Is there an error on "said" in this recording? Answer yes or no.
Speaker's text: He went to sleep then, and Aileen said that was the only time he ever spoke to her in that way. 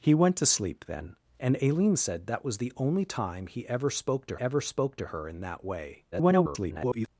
no